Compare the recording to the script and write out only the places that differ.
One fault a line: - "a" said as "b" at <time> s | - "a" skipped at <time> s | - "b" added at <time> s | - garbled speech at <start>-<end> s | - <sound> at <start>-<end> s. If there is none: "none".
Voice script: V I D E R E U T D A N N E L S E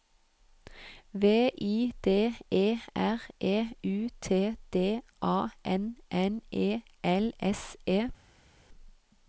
none